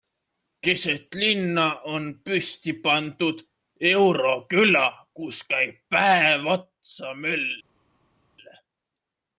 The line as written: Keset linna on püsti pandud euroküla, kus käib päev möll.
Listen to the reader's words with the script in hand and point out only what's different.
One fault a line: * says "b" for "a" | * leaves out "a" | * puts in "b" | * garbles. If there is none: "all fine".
* puts in "otsa"